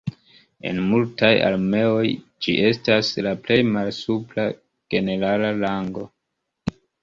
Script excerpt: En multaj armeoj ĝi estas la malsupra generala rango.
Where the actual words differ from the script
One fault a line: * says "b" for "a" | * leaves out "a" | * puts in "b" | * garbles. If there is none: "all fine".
* puts in "plej"